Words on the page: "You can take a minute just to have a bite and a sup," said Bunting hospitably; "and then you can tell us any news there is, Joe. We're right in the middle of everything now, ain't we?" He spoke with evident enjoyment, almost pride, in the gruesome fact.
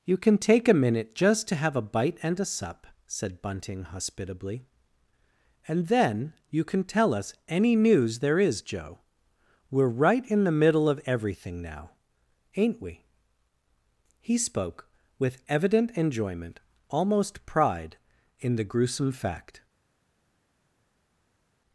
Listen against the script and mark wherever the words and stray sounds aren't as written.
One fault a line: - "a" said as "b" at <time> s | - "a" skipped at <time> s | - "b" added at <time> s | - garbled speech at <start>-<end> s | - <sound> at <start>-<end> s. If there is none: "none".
none